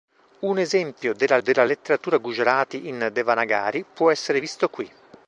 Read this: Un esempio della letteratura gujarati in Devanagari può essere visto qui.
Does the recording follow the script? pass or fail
fail